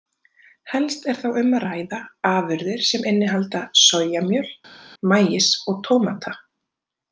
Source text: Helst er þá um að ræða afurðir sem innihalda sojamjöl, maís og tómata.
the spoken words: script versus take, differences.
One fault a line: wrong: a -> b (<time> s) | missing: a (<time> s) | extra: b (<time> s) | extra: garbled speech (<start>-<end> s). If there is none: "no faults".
no faults